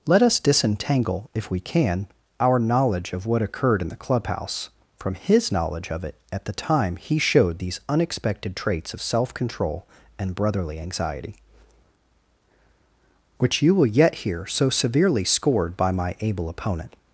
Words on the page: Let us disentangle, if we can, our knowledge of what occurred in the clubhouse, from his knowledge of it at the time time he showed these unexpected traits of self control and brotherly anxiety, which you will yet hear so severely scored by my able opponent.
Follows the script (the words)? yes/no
no